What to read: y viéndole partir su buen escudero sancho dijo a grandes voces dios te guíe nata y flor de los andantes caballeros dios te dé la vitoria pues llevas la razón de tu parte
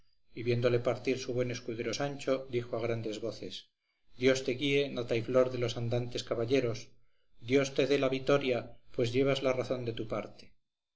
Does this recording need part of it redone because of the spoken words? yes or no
no